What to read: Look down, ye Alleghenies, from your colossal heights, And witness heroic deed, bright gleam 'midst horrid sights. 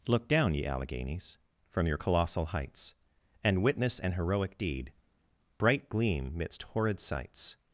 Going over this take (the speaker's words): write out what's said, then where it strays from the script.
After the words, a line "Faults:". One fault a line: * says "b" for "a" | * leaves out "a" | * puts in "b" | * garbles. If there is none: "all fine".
Look down, ye Alleghenies, from your colossal heights, And witness an heroic deed, bright gleam 'midst horrid sights.
Faults:
* puts in "an"